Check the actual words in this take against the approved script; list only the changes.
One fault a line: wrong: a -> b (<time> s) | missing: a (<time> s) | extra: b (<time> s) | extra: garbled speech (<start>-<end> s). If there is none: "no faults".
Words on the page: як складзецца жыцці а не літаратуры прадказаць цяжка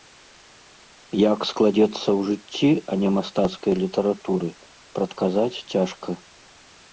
extra: ў (2.0 s)
extra: мастацкай (3.2 s)